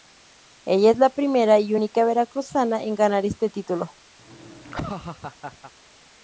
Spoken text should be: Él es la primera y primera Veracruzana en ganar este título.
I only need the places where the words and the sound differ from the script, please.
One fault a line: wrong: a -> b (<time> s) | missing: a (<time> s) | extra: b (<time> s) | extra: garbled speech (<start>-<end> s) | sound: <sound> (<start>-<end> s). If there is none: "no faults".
wrong: Él -> Ella (0.7 s)
wrong: primera -> única (1.7 s)
sound: laugh (4.2-5.7 s)